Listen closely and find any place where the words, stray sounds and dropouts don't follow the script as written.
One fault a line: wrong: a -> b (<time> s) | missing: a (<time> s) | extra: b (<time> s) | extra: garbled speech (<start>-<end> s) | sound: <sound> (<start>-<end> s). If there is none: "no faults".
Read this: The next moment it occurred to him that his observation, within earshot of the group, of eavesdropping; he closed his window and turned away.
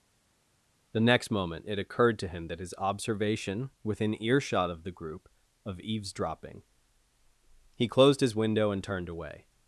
no faults